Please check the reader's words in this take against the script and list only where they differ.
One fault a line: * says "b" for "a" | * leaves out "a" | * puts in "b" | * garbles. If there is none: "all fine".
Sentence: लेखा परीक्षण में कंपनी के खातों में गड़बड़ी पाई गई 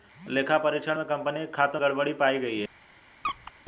* leaves out "में"